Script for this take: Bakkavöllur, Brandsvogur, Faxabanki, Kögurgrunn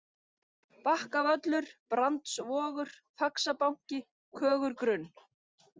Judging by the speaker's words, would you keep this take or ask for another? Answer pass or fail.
pass